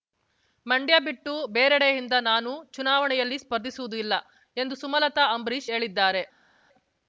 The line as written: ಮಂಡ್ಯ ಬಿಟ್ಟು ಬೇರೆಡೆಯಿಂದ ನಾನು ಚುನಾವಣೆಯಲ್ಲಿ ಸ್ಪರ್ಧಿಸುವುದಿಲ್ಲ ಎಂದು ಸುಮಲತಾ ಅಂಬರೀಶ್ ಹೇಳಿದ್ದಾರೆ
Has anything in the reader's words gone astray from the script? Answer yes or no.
no